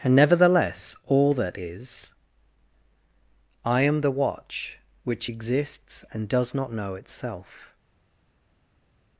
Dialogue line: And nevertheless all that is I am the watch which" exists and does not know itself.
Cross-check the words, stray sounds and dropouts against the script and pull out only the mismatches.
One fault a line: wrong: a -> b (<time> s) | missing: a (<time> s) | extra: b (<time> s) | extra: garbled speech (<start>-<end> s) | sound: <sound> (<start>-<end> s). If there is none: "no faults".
no faults